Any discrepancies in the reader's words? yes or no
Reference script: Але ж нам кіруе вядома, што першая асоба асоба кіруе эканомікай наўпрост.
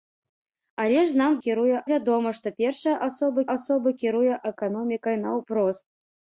no